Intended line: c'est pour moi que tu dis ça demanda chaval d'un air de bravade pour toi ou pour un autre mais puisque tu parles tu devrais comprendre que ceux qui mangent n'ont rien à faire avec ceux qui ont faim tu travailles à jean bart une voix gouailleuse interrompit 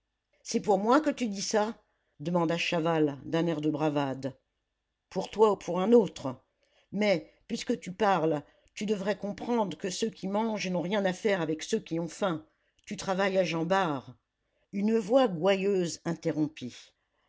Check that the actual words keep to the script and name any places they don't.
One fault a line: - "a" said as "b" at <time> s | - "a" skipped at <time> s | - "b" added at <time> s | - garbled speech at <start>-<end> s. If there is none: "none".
none